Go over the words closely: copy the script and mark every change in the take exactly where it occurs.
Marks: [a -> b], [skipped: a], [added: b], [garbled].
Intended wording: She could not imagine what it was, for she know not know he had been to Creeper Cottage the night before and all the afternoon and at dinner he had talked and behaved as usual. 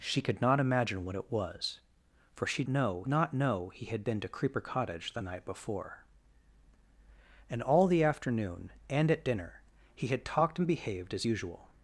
She could not imagine what it was, for she know not know he had been to Creeper Cottage the night before and all the afternoon and at dinner he had talked and behaved as usual.